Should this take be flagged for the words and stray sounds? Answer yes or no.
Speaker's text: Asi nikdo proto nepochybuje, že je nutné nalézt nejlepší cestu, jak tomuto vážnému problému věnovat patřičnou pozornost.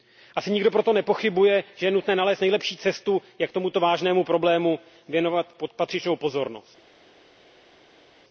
no